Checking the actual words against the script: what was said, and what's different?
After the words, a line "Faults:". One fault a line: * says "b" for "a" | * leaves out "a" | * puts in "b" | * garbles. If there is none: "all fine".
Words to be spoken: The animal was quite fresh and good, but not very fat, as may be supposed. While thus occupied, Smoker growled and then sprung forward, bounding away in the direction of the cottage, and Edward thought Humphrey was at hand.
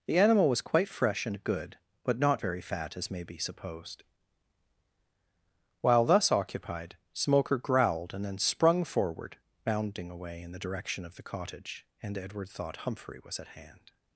The animal was quite fresh and good, but not very fat, as may be supposed. While thus occupied, Smoker growled and then sprung forward, bounding away in the direction of the cottage, and Edward thought Humphrey was at hand.
Faults:
all fine